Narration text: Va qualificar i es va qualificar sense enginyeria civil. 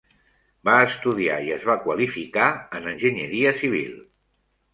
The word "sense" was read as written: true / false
false